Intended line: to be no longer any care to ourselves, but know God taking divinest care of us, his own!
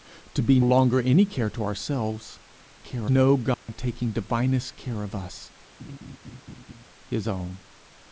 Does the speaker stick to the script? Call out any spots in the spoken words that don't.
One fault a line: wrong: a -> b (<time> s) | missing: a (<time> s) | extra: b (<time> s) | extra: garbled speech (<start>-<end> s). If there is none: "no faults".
missing: no (0.6 s)
wrong: but -> care (2.8 s)